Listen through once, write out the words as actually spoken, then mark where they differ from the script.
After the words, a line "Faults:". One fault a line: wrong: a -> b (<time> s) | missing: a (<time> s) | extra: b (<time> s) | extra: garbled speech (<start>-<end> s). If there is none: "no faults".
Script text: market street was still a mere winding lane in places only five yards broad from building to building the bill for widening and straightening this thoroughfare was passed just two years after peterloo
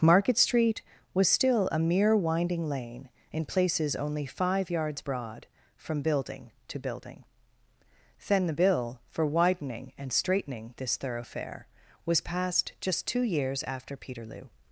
market street was still a mere winding lane in places only five yards broad from building to building then the bill for widening and straightening this thoroughfare was passed just two years after peterloo
Faults:
extra: then (8.3 s)